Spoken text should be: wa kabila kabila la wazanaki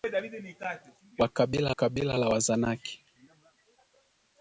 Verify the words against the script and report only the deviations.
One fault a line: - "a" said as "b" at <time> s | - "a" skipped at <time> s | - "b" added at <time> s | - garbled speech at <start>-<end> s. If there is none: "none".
none